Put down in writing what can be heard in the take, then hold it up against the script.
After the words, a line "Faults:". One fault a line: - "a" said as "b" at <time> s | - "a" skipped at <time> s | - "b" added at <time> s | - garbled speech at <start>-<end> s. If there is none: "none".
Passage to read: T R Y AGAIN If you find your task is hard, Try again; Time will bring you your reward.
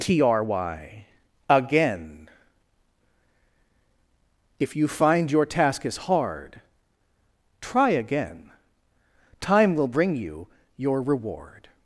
T R Y AGAIN If you find your task is hard, Try again; Time will bring you your reward.
Faults:
none